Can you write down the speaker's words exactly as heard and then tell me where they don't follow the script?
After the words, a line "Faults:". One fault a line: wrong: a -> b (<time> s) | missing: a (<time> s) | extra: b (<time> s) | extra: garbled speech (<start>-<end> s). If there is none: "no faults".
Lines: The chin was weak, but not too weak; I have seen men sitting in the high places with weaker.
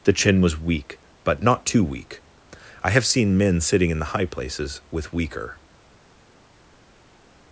The chin was weak, but not too weak; I have seen men sitting in the high places with weaker.
Faults:
no faults